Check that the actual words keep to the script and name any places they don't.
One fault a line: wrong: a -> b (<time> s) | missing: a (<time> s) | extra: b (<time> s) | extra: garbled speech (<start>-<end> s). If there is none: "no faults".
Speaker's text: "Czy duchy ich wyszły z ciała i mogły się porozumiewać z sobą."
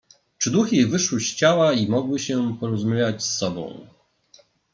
no faults